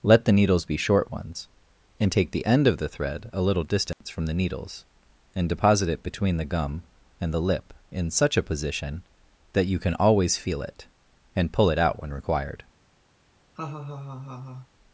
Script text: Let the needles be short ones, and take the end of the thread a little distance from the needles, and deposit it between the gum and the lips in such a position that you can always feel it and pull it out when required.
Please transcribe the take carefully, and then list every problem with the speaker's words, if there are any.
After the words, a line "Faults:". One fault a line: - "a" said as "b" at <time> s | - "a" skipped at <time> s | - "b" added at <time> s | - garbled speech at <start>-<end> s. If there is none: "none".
Let the needles be short ones, and take the end of the thread a little distance from the needles, and deposit it between the gum and the lip in such a position that you can always feel it and pull it out when required.
Faults:
- "lips" said as "lip" at 7.4 s